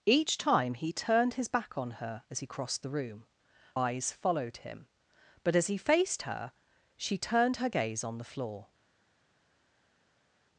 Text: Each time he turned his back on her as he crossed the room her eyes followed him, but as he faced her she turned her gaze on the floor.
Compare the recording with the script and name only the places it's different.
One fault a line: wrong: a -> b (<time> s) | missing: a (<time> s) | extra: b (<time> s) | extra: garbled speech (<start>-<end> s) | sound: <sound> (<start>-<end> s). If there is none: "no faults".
missing: her (3.2 s)